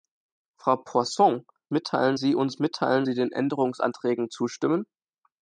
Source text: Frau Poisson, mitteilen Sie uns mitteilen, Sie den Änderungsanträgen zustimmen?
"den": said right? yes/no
yes